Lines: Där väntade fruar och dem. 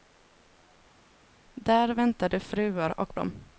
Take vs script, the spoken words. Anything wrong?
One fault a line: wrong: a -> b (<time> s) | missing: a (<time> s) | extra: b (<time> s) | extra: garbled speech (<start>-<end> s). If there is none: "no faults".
no faults